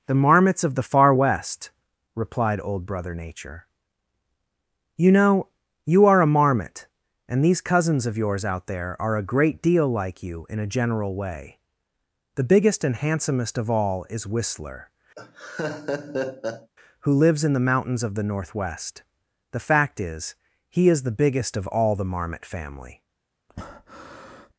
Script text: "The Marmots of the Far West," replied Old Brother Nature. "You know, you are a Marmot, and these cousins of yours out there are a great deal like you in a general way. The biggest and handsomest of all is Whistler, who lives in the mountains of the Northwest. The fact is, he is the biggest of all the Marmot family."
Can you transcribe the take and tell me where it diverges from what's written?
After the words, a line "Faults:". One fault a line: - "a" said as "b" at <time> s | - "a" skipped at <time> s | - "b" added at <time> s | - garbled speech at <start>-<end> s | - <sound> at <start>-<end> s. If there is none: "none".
"The Marmots of the Far West," replied Old Brother Nature. "You know, you are a Marmot, and these cousins of yours out there are a great deal like you in a general way. The biggest and handsomest of all is Whistler, who lives in the mountains of the Northwest. The fact is, he is the biggest of all the Marmot family."
Faults:
- laugh at 15.1-16.7 s
- breath at 23.5-24.5 s